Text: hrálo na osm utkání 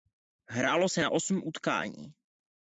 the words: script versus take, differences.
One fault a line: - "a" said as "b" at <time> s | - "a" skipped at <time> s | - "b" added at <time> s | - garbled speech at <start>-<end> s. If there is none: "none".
- "se" added at 0.9 s